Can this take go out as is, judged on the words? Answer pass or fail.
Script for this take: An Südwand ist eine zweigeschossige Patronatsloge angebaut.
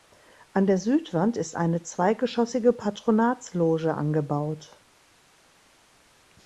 fail